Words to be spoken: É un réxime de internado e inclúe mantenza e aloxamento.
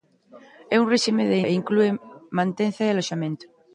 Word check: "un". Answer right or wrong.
right